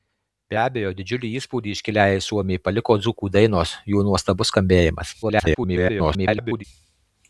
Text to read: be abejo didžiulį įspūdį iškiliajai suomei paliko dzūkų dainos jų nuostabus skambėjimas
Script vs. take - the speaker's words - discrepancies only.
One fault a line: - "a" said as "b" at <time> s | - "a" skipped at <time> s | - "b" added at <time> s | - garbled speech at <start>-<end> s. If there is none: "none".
- garbled speech at 5.2-6.6 s